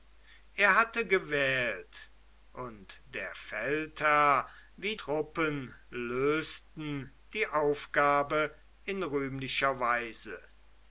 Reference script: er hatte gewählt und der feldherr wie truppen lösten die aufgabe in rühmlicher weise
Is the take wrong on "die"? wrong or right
right